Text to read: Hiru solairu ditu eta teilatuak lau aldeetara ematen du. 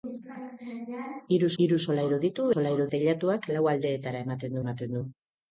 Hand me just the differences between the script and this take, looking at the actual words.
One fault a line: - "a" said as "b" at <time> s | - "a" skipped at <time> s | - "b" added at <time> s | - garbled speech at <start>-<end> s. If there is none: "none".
- "hiru" added at 1.6 s
- "eta" said as "solairu" at 2.5 s
- "ematen" added at 4.6 s